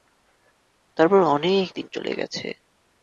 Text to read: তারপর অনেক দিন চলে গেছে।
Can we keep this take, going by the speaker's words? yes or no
yes